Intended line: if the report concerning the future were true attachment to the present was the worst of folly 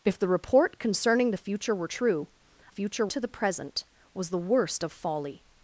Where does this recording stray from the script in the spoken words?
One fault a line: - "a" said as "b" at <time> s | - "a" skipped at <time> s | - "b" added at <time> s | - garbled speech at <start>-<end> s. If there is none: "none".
- "attachment" said as "future" at 2.7 s